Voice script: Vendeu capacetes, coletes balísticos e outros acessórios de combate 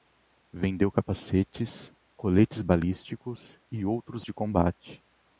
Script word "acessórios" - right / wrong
wrong